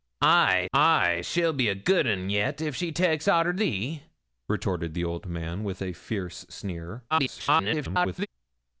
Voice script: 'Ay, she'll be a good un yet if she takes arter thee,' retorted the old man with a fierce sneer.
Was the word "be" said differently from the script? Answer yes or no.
no